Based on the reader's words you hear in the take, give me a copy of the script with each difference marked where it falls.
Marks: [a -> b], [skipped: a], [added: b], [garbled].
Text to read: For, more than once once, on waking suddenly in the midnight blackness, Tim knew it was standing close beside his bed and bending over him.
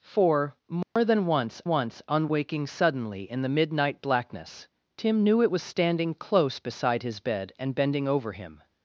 For, more than once once, on waking suddenly in the midnight blackness, Tim knew it was standing close beside his bed and bending over him.